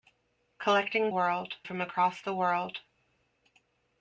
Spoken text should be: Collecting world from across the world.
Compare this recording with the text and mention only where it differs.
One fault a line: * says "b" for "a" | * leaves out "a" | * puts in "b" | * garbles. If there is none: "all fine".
all fine